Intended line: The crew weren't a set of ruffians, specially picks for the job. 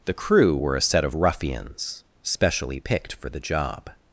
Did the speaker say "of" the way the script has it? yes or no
yes